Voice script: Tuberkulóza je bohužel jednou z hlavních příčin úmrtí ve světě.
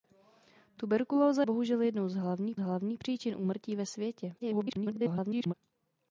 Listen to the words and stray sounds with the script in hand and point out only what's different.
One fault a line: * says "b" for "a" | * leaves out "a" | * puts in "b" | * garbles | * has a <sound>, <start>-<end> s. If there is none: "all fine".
* leaves out "je"
* puts in "hlavních"
* garbles